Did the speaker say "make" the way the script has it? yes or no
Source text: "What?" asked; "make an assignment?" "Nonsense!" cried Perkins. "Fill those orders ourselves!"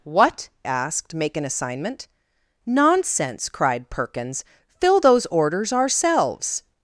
yes